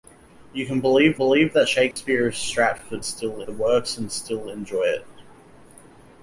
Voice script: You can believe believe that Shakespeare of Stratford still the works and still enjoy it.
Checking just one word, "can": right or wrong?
right